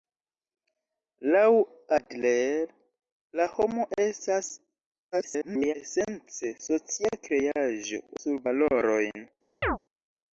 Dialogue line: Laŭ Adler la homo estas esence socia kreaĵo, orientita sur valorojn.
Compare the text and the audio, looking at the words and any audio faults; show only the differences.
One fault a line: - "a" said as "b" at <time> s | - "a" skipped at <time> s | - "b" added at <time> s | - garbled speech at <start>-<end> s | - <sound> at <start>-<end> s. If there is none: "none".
- garbled speech at 5.1-5.7 s
- "orientita" skipped at 8.0 s
- chirp at 9.6-9.8 s